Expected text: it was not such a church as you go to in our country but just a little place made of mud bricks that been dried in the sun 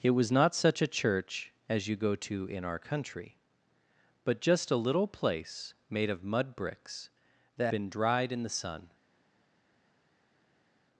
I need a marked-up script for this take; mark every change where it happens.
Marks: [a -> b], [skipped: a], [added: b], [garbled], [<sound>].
it was not such a church as you go to in our country but just a little place made of mud bricks that been dried in the sun